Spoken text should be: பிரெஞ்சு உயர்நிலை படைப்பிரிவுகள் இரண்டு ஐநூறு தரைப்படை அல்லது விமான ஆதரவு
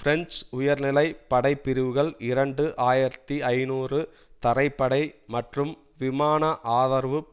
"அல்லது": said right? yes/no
no